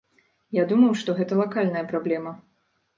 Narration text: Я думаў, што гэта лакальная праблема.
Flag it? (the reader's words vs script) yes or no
no